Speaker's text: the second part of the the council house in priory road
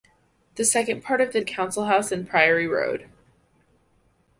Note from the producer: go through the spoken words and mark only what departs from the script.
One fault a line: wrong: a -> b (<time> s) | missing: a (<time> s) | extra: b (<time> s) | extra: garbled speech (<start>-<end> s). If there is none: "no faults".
no faults